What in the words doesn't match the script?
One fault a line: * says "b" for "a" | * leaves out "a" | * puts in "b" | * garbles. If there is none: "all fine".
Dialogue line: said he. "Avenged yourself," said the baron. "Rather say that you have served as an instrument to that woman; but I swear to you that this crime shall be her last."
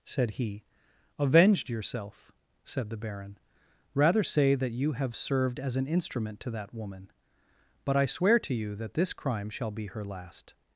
all fine